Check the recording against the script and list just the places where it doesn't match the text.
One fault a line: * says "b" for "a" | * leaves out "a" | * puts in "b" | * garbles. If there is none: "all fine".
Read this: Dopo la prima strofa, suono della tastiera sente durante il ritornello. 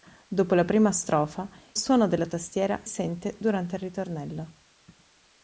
all fine